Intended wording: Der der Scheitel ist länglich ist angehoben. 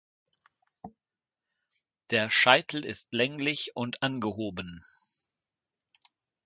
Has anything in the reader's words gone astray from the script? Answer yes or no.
yes